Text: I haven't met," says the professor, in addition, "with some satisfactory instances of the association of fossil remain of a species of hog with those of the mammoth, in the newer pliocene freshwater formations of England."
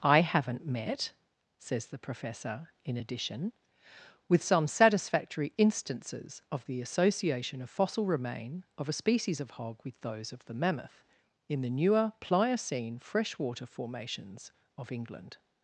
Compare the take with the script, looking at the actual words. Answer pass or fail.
pass